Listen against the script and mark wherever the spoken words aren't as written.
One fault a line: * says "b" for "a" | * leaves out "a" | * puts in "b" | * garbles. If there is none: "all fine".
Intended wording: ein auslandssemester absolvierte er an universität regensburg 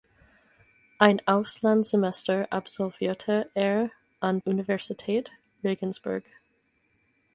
all fine